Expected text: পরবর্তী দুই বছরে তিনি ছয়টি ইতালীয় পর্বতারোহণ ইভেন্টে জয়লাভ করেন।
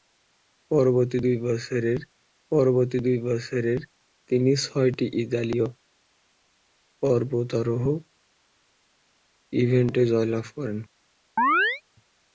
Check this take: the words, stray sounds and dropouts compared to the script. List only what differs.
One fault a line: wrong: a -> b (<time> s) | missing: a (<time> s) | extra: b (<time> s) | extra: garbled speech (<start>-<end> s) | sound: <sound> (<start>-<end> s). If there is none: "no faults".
extra: পরবর্তী দুই বছরে (2.5 s)
sound: chirp (11.4-11.8 s)